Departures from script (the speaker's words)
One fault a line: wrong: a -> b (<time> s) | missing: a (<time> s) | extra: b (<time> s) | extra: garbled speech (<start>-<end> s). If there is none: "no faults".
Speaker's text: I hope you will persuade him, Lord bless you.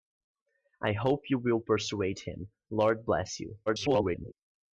extra: garbled speech (3.7-4.3 s)